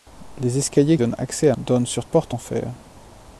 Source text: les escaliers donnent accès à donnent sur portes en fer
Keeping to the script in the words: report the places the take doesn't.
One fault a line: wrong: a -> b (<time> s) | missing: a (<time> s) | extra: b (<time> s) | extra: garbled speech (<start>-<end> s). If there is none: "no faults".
no faults